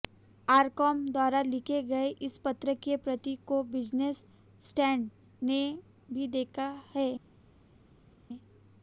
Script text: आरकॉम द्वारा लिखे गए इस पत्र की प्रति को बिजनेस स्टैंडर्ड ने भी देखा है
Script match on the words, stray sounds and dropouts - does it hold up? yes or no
yes